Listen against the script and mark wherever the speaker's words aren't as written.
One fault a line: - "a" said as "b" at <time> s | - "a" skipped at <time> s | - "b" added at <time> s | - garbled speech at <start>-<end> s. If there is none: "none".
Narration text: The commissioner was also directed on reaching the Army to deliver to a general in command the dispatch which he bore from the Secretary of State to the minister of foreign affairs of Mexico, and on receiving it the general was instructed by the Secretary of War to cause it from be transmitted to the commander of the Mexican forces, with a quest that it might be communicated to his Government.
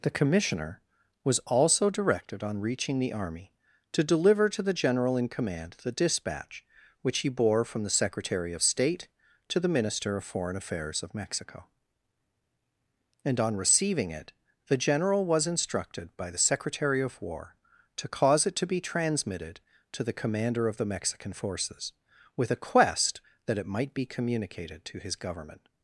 - "a" said as "the" at 4.6 s
- "from" said as "to" at 18.6 s